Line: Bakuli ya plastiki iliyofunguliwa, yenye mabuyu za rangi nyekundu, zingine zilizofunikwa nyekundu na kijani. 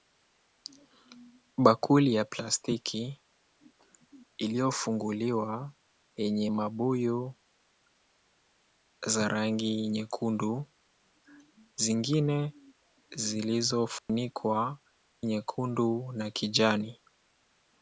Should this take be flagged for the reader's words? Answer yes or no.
no